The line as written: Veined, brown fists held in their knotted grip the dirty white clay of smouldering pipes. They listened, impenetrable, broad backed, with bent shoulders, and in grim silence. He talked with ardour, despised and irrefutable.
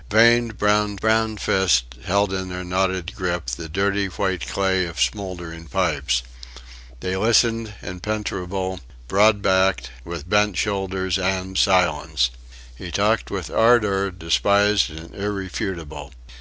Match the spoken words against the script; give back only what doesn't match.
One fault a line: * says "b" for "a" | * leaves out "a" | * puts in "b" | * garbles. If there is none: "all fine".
* puts in "brown"
* leaves out "in grim"